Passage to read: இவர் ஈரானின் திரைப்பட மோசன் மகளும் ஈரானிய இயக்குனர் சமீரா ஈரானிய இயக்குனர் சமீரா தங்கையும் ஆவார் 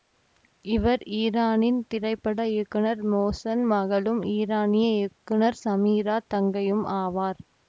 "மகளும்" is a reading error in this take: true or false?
false